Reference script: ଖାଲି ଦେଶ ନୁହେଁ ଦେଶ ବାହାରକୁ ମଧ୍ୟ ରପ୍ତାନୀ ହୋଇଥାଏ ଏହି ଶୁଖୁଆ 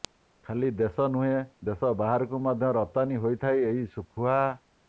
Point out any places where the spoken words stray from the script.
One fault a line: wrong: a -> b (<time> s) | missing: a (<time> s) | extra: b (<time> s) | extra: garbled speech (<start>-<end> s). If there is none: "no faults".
no faults